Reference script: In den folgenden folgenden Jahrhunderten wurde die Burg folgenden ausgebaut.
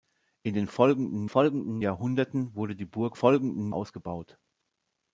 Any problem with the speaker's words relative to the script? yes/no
no